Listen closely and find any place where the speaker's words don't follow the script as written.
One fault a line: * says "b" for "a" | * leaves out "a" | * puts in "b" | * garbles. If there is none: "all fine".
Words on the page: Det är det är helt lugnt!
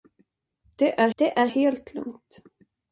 all fine